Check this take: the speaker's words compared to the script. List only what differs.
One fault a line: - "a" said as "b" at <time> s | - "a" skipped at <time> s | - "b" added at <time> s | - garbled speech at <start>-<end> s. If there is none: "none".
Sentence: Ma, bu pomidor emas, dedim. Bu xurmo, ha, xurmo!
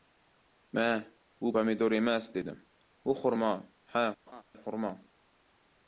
none